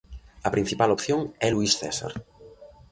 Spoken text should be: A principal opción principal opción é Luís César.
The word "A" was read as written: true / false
true